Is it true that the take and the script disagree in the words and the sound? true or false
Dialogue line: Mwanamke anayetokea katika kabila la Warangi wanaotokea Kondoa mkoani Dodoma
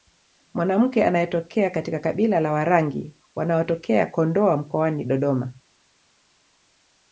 false